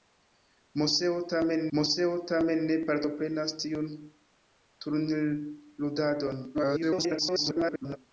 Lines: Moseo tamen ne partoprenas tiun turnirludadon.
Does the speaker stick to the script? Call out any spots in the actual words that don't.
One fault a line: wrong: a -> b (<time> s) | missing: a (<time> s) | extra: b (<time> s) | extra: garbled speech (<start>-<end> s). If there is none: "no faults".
extra: moseo tamen (1.8 s)
extra: garbled speech (6.5-8.0 s)